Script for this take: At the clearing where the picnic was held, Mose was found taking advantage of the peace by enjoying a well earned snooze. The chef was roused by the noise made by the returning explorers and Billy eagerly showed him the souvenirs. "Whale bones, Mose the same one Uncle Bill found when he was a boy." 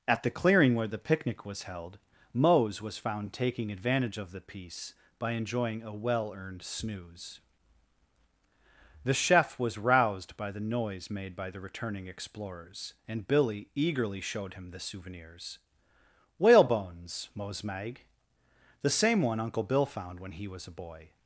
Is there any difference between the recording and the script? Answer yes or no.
yes